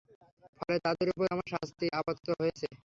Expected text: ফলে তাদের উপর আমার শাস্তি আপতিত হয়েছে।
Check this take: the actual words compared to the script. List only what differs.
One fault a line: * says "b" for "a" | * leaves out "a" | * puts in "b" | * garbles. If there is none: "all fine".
all fine